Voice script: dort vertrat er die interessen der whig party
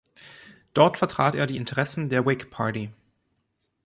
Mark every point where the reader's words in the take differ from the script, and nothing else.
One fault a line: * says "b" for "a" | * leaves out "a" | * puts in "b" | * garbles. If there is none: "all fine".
all fine